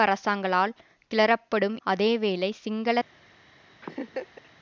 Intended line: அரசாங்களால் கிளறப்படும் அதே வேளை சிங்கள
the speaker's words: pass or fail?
pass